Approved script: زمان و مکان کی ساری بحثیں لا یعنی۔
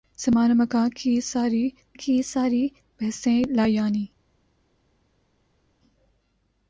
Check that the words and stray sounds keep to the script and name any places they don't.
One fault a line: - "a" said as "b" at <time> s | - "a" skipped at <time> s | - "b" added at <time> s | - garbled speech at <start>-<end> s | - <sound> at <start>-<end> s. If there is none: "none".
- "کی ساری" added at 1.9 s